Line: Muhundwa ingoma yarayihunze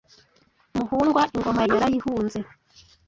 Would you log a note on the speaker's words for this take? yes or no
no